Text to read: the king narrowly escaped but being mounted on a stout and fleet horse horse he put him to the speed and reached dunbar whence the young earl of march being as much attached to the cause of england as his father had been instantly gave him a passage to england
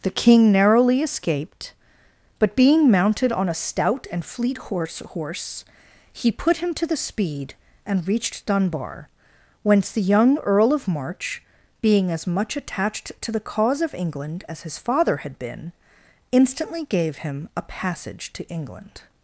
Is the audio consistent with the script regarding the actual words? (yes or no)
yes